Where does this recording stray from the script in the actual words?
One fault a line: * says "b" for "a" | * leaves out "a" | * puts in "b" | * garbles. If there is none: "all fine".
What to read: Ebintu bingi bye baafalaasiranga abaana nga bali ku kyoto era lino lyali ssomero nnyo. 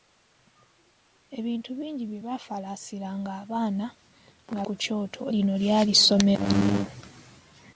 * leaves out "bali"
* leaves out "era"